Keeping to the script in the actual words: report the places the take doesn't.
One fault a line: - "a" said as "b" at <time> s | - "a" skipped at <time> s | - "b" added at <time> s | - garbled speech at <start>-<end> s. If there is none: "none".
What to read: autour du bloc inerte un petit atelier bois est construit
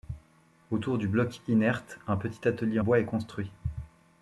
none